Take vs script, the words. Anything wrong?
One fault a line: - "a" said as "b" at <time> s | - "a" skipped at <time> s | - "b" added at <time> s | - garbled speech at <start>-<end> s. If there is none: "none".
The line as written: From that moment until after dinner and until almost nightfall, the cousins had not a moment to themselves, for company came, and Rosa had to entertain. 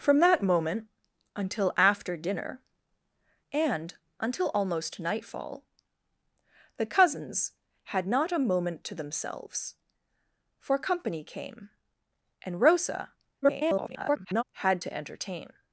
- garbled speech at 13.4-14.4 s